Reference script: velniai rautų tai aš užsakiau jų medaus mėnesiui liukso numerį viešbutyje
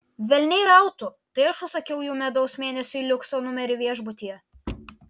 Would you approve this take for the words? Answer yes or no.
yes